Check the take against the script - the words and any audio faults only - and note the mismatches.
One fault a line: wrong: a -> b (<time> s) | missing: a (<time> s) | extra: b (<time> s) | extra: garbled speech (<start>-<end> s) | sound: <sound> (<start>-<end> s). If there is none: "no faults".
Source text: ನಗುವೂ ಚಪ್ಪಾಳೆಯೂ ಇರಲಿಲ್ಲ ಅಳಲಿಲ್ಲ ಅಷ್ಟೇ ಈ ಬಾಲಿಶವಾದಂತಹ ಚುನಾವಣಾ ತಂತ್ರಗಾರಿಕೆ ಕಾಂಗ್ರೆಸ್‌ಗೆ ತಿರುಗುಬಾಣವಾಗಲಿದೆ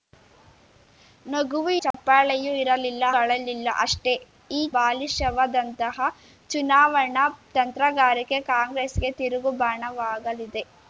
sound: dropout (1.9-1.9 s)